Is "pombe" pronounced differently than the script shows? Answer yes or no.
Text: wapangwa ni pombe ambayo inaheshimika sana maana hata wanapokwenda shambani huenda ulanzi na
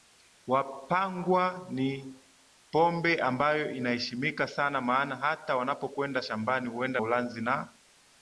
no